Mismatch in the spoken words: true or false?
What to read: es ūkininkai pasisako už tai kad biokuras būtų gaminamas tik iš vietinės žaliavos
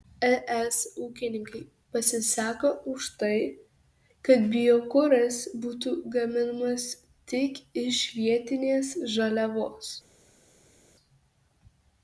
false